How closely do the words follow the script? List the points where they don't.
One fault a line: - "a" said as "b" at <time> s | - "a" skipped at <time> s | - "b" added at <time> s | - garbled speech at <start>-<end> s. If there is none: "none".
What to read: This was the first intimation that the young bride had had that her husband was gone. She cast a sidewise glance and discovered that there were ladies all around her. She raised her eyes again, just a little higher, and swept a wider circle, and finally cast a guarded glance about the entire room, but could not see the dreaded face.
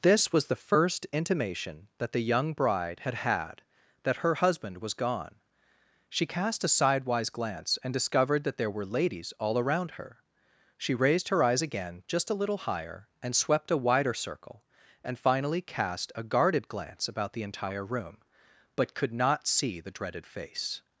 none